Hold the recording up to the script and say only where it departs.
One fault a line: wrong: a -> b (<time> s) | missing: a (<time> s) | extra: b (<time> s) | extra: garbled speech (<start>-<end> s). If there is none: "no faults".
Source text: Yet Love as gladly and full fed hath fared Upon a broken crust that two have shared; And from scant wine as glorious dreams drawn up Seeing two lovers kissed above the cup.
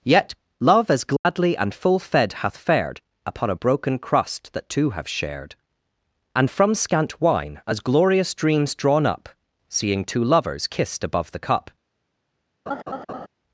no faults